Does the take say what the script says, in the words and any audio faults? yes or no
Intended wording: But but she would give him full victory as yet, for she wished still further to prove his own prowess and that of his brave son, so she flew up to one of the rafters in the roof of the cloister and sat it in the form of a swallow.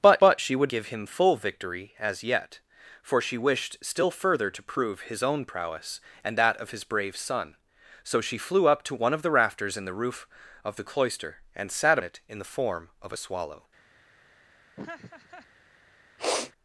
no